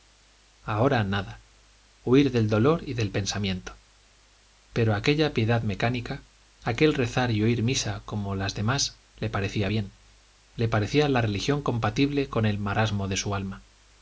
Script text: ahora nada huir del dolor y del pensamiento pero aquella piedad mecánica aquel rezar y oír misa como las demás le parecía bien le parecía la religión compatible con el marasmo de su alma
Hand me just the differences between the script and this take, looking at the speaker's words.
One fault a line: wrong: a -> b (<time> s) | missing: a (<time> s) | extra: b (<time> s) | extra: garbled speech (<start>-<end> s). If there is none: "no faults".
no faults